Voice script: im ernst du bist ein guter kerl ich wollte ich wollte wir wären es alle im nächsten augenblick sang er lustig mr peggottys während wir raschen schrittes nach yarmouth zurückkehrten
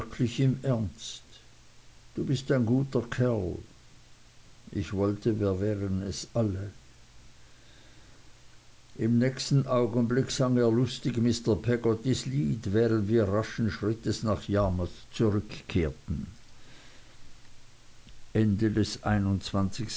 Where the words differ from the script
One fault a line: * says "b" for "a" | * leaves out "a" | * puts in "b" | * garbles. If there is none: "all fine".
* leaves out "ich wollte"
* puts in "lied"